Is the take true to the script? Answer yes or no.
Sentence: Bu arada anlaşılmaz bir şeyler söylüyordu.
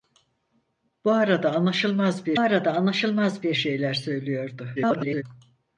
no